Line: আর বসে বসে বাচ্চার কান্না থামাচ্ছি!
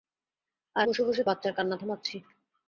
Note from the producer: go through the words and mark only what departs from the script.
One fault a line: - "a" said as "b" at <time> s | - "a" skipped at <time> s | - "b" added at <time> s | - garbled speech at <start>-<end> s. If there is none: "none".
none